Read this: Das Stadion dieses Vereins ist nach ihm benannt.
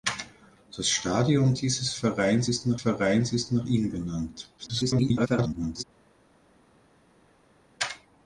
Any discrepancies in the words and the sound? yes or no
yes